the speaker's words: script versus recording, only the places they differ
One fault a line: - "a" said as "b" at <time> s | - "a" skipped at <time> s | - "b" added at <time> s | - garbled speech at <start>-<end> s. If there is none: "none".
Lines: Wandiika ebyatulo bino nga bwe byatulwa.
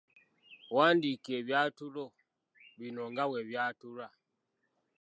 none